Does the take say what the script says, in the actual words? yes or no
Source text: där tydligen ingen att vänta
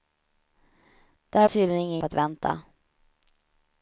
yes